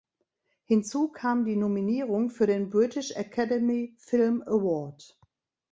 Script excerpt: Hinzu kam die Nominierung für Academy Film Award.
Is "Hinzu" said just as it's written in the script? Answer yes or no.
yes